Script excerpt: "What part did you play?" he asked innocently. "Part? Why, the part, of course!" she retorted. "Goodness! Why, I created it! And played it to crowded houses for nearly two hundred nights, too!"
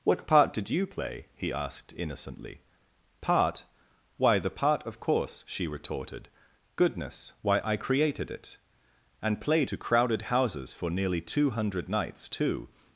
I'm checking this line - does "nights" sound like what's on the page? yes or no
yes